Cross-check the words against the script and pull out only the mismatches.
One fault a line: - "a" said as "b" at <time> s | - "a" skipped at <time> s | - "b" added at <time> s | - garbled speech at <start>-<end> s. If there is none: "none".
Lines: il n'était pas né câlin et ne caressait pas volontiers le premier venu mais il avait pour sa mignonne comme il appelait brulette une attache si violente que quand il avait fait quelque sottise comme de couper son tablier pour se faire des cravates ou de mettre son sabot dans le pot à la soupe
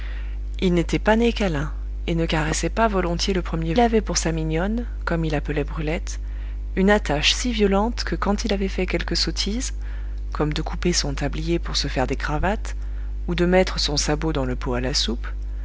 - "venu mais il" skipped at 3.8 s